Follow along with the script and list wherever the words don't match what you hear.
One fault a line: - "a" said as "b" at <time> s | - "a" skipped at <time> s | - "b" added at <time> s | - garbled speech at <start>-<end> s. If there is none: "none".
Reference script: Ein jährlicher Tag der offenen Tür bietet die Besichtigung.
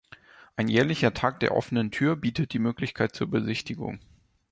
- "Möglichkeit zur" added at 2.6 s